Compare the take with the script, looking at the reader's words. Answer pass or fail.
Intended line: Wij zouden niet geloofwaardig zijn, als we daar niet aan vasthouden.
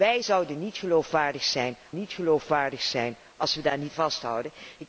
fail